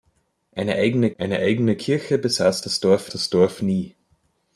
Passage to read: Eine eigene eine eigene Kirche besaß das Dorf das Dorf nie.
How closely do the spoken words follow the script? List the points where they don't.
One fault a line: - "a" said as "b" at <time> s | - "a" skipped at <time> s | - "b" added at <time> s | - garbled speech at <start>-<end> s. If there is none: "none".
none